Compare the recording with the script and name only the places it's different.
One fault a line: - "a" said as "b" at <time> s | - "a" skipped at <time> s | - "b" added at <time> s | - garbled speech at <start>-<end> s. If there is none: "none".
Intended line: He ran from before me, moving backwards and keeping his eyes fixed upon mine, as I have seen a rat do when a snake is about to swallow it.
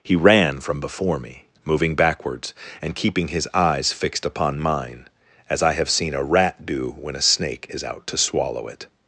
- "about" said as "out" at 7.8 s